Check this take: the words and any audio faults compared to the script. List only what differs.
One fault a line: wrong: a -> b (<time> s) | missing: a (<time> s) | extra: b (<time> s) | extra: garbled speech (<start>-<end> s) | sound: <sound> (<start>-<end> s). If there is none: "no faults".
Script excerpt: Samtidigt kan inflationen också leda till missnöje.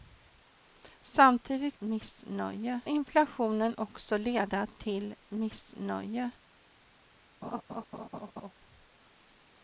wrong: kan -> missnöje (1.8 s)
sound: laugh (7.4-8.5 s)